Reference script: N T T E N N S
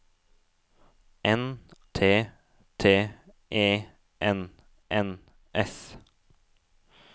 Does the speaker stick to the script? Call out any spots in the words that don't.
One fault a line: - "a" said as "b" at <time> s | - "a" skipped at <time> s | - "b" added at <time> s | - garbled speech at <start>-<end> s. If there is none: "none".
none